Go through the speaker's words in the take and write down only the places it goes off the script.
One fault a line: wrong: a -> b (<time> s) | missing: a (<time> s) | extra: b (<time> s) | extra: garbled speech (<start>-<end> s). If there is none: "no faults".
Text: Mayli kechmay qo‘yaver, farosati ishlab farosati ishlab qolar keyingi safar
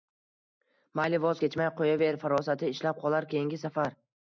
extra: voz (1.2 s)
missing: farosati ishlab (3.0 s)